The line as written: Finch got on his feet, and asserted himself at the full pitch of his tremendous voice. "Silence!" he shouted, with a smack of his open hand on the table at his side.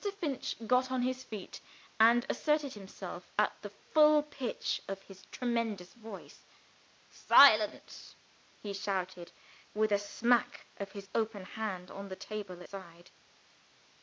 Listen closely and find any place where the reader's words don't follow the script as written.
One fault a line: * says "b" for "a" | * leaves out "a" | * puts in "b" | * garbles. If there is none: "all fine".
* leaves out "at his"